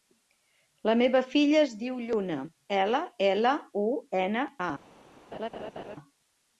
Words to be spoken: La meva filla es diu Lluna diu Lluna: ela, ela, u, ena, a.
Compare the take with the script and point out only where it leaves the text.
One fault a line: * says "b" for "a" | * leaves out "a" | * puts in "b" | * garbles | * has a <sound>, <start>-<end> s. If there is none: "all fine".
* leaves out "diu Lluna"
* has a laugh, 5.3-6.0 s